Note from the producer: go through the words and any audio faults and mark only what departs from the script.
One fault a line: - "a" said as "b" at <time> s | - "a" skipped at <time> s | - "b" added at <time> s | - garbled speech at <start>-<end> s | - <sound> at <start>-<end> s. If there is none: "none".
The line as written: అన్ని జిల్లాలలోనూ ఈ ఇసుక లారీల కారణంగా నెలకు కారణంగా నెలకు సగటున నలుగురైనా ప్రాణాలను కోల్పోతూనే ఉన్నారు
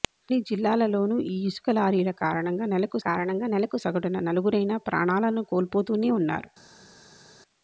none